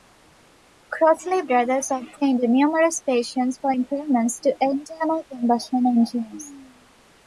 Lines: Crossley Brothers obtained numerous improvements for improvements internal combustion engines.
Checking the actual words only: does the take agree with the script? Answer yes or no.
no